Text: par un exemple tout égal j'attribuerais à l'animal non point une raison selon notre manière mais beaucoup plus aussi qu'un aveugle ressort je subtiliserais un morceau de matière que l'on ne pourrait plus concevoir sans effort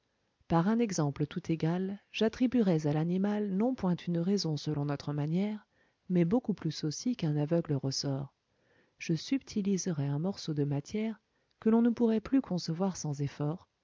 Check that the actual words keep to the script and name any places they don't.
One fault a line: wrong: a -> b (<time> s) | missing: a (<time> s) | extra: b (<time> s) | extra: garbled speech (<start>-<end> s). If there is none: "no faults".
no faults